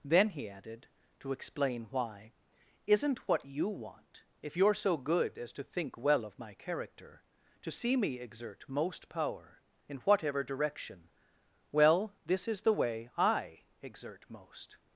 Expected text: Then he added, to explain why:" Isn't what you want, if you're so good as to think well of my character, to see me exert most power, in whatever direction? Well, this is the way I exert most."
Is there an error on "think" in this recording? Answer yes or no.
no